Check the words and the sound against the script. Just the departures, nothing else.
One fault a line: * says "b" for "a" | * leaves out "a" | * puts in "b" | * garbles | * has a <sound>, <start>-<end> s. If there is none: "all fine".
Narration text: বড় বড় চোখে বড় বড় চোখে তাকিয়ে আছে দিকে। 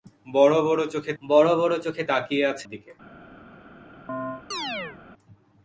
* has a chirp, 4.1-5.0 s